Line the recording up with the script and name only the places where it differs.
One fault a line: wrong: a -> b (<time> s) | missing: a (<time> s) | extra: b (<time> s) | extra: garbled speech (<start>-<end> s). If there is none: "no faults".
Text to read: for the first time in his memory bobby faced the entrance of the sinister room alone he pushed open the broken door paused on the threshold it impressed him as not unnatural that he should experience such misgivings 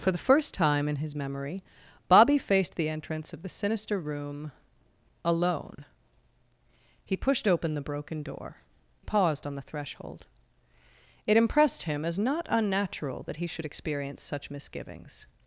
no faults